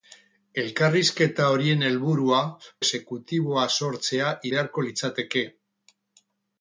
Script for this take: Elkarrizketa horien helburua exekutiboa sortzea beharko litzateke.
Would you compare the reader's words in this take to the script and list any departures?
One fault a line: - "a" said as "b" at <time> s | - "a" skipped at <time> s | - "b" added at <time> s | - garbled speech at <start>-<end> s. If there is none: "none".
none